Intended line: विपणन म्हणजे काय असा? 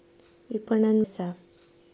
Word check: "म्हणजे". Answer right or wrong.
wrong